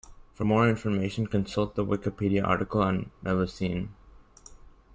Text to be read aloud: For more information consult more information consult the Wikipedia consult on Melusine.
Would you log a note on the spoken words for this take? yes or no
yes